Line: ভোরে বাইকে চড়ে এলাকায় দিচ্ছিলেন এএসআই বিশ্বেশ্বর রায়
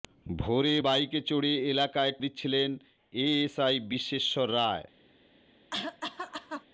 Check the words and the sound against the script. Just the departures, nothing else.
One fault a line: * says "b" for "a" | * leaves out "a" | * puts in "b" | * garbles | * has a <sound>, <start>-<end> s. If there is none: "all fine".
* has a cough, 5.7-6.6 s